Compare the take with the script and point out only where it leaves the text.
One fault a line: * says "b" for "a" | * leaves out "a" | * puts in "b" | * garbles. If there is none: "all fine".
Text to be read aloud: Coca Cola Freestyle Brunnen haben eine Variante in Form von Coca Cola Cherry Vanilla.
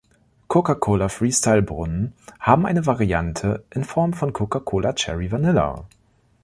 all fine